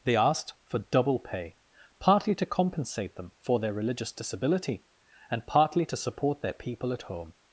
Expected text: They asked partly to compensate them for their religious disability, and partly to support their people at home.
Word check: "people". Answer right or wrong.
right